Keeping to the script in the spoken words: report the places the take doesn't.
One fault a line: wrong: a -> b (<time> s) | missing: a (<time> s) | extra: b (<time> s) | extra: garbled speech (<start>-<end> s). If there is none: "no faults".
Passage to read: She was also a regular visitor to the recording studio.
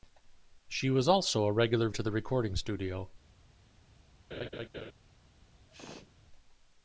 missing: visitor (1.9 s)